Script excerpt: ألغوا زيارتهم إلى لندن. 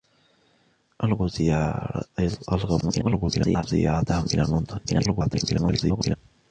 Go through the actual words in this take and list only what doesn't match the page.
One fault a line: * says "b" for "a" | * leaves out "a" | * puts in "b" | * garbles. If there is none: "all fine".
* garbles
* garbles